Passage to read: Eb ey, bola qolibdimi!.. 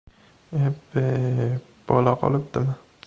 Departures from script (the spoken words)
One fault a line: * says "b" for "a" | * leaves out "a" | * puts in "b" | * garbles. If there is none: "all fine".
all fine